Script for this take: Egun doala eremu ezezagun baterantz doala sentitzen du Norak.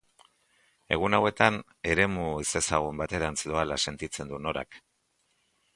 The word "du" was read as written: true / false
true